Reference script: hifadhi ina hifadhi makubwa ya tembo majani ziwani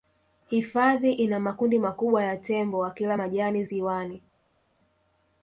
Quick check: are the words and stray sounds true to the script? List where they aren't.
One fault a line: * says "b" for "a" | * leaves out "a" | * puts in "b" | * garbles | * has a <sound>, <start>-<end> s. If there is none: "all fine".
* says "makundi" for "hifadhi"
* puts in "wakila"